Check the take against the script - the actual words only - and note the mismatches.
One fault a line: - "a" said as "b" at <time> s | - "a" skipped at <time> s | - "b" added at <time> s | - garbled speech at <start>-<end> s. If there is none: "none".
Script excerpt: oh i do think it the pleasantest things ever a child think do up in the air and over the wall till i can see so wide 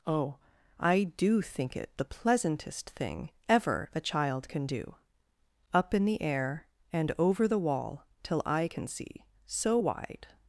- "things" said as "thing" at 2.9 s
- "think" said as "can" at 4.5 s